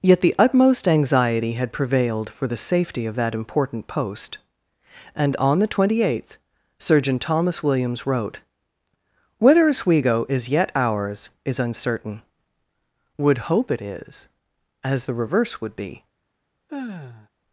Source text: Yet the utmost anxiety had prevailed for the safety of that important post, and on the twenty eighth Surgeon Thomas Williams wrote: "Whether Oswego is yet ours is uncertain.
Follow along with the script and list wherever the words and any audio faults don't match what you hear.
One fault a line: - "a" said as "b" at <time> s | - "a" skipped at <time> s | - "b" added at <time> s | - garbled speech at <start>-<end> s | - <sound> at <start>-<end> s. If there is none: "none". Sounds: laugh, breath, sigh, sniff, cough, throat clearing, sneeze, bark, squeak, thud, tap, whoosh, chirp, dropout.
- "Would hope it is as the reverse would be" added at 13.2 s
- sigh at 16.7-17.3 s